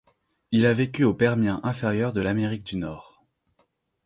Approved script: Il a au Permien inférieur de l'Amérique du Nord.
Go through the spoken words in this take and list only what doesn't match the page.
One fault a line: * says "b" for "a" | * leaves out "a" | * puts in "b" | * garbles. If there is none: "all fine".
* puts in "vécu"